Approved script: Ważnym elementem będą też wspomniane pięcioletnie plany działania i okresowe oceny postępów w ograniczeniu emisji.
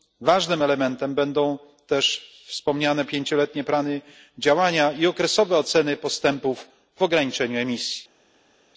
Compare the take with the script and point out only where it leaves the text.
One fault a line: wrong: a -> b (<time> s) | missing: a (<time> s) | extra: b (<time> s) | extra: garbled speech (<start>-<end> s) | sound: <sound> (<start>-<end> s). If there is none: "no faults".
no faults